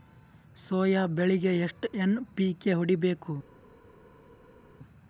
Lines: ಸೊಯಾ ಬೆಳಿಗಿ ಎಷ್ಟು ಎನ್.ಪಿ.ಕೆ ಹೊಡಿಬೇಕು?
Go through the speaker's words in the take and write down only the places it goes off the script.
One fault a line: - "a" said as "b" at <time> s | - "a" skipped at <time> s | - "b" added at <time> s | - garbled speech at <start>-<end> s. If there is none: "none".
none